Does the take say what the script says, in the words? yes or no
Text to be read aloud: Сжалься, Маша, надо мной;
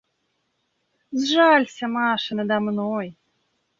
yes